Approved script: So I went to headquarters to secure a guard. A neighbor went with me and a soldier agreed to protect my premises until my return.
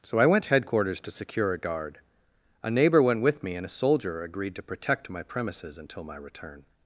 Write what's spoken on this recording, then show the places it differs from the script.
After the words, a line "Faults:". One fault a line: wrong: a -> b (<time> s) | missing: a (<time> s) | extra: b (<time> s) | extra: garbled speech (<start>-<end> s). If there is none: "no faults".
So I went headquarters to secure a guard. A neighbor went with me and a soldier agreed to protect my premises until my return.
Faults:
missing: to (0.5 s)